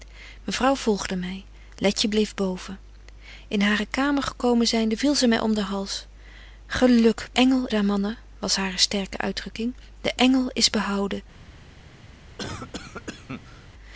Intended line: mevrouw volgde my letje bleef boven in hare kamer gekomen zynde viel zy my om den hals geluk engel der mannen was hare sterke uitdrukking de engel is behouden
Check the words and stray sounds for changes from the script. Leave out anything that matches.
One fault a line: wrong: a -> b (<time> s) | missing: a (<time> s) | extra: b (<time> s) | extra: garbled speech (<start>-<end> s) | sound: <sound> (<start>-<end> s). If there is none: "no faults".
sound: cough (12.4-13.7 s)